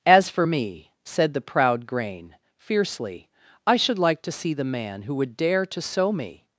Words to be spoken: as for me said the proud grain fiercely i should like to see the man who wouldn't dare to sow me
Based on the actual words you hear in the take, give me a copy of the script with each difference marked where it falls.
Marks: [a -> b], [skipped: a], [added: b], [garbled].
as for me said the proud grain fiercely i should like to see the man who [wouldn't -> would] dare to sow me